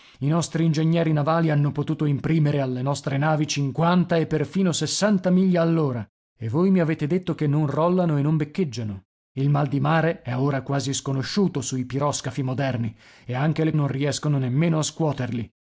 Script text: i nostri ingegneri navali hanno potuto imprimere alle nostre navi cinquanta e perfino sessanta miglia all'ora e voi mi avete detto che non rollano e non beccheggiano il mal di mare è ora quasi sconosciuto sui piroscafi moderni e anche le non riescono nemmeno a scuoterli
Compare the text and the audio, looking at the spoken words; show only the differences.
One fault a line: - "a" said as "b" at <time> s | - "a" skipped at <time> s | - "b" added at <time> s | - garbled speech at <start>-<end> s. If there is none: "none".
none